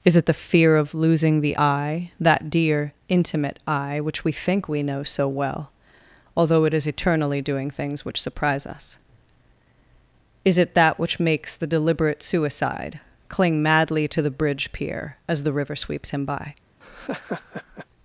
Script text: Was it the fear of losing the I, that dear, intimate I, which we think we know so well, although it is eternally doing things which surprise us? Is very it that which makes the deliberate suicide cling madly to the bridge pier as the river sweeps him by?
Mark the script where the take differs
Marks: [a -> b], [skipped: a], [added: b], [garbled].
[Was -> Is] it the fear of losing the I, that dear, intimate I, which we think we know so well, although it is eternally doing things which surprise us? Is [skipped: very] it that which makes the deliberate suicide cling madly to the bridge pier as the river sweeps him by?